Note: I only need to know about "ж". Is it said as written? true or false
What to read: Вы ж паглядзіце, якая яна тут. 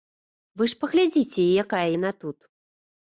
true